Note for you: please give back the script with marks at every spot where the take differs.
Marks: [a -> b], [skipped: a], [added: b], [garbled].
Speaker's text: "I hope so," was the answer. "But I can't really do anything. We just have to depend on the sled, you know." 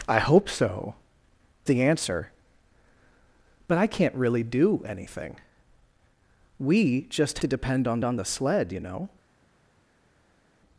"I hope so," [skipped: was] the answer. "But I can't really do anything. We just [skipped: have] to depend on [added: on] the sled, you know."